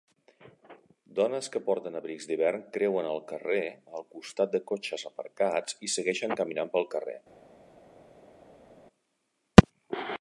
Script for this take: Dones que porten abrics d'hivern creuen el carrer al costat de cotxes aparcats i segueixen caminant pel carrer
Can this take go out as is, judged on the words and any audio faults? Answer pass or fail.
pass